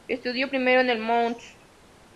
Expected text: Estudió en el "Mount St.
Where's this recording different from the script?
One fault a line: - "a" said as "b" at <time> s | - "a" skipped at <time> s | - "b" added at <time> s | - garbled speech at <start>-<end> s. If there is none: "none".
- "primero" added at 0.5 s